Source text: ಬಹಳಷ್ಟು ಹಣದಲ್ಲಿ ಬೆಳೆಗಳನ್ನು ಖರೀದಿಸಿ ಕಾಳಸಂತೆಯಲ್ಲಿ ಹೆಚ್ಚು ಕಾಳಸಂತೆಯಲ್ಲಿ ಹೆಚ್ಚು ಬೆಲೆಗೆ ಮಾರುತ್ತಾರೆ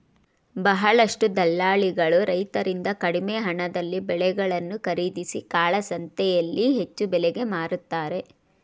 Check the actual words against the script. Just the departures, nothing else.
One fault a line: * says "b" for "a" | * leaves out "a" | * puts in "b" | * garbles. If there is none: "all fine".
* puts in "ದಲ್ಲಾಳಿಗಳು ರೈತರಿಂದ ಕಡಿಮೆ"
* leaves out "ಕಾಳಸಂತೆಯಲ್ಲಿ ಹೆಚ್ಚು"